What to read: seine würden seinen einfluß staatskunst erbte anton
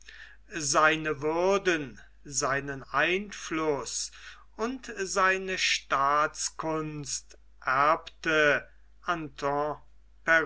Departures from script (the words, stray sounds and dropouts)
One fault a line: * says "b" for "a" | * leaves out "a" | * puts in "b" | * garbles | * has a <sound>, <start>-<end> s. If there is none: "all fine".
* puts in "und seine"